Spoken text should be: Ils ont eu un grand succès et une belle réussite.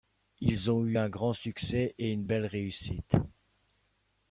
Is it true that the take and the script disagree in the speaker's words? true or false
false